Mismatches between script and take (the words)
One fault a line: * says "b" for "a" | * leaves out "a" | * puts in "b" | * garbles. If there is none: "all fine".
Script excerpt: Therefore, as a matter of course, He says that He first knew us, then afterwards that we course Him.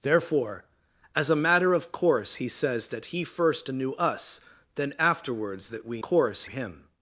all fine